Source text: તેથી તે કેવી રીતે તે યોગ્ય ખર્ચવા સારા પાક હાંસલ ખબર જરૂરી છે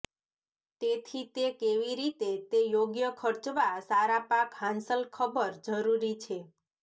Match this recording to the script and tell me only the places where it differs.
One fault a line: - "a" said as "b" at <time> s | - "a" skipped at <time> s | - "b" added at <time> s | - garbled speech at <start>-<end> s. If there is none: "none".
none